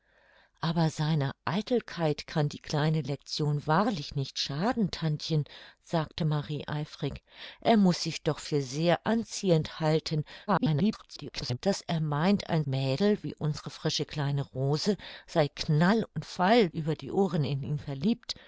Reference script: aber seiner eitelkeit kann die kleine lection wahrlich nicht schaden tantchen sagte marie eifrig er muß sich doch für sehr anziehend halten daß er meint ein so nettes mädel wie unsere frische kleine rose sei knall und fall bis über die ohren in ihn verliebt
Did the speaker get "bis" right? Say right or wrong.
wrong